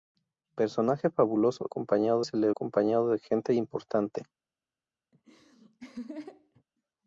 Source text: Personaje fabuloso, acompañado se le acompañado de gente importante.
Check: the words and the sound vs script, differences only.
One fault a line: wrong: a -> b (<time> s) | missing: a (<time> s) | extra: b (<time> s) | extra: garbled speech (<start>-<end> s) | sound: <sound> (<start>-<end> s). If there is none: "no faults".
sound: laugh (5.1-6.6 s)